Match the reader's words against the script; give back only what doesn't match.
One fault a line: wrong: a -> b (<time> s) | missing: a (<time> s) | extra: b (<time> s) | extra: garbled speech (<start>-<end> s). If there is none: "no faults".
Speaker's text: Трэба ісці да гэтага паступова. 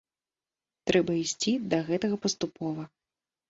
no faults